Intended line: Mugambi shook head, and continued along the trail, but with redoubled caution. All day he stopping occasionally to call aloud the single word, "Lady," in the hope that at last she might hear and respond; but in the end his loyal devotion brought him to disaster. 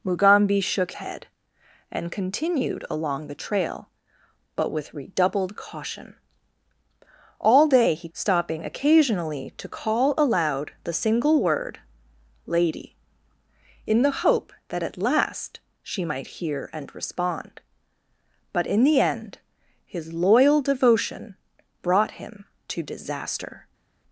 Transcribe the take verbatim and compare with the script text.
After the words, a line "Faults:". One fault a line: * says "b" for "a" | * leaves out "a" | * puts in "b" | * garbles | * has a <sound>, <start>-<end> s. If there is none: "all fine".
Mugambi shook head, and continued along the trail, but with redoubled caution. All day he stopping occasionally to call aloud the single word, "Lady," in the hope that at last she might hear and respond; but in the end his loyal devotion brought him to disaster.
Faults:
all fine